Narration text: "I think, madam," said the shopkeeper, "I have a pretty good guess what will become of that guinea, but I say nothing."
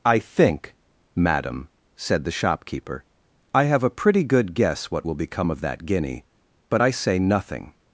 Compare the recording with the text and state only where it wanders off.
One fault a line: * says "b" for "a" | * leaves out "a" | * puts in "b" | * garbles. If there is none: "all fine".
all fine